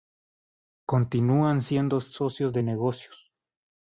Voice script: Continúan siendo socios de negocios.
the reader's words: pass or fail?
pass